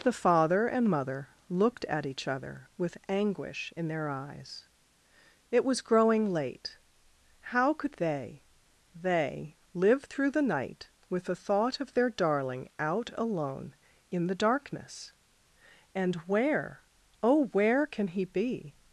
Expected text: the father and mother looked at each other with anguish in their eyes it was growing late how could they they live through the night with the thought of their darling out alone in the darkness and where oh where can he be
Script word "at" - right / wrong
right